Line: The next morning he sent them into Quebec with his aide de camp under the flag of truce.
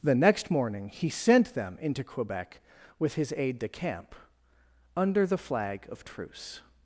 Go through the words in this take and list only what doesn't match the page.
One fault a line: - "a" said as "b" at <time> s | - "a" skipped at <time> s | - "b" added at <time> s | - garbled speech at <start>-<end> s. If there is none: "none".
none